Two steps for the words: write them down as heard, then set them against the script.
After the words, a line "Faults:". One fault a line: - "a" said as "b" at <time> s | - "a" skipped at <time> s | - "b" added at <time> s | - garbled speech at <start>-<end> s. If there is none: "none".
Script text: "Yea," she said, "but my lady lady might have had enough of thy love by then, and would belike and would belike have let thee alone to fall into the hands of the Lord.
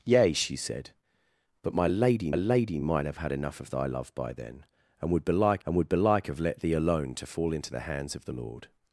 "Yea," she said, "but my lady lady might have had enough of thy love by then, and would belike and would belike have let thee alone to fall into the hands of the Lord.
Faults:
none